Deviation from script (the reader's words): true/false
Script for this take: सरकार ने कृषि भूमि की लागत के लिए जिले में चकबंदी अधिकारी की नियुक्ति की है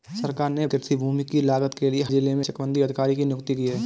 false